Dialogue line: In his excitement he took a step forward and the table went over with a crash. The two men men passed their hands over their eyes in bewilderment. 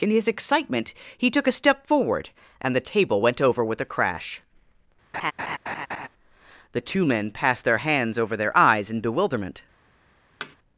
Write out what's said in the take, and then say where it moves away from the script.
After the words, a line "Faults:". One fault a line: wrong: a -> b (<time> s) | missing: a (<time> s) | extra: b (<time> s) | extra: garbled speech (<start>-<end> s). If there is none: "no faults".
In his excitement he took a step forward and the table went over with a crash. The two men passed their hands over their eyes in bewilderment.
Faults:
missing: men (7.3 s)